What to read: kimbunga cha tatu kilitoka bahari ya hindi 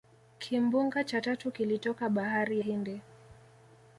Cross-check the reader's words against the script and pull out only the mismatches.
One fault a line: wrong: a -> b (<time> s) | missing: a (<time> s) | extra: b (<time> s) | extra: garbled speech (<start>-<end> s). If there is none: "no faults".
missing: ya (2.6 s)